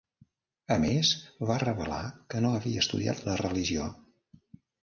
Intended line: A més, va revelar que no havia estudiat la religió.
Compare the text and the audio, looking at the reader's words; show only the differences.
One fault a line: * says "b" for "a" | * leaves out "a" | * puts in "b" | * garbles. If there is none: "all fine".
all fine